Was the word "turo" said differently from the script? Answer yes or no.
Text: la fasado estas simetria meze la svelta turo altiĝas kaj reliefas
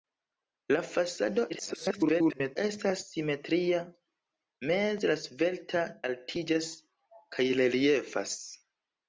yes